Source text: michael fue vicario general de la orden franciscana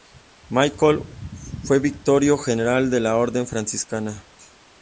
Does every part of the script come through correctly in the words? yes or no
yes